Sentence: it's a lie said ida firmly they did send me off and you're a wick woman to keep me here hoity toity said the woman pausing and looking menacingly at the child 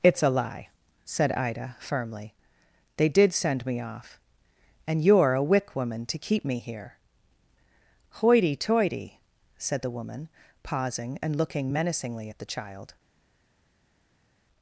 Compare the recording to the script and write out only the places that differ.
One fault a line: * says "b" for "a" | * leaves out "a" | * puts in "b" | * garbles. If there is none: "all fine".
all fine